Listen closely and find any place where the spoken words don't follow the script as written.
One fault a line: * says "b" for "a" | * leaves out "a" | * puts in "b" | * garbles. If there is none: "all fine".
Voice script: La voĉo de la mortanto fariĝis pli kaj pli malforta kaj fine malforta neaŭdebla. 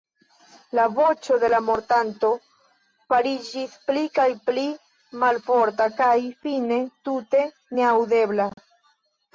* says "tute" for "malforta"